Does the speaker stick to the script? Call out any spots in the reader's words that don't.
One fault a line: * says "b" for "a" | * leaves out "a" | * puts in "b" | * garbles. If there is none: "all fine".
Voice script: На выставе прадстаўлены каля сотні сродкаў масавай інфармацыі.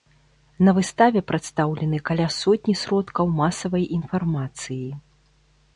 all fine